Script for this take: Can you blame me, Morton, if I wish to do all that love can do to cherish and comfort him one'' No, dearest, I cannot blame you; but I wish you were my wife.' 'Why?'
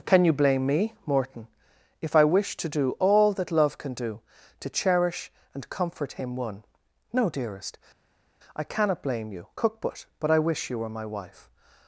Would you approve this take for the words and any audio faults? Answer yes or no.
no